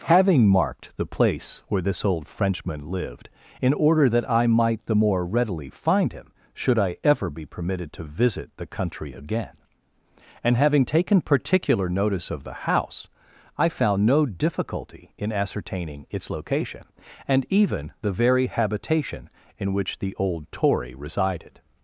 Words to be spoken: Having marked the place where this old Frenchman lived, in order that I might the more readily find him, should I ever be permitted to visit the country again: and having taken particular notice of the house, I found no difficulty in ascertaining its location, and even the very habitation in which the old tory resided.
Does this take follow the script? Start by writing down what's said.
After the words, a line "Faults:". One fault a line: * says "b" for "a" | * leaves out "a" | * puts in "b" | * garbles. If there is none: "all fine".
Having marked the place where this old Frenchman lived, in order that I might the more readily find him, should I ever be permitted to visit the country again: and having taken particular notice of the house, I found no difficulty in ascertaining its location, and even the very habitation in which the old tory resided.
Faults:
all fine